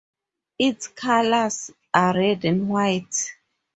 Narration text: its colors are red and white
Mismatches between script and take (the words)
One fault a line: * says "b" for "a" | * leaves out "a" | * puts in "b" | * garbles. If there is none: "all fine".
all fine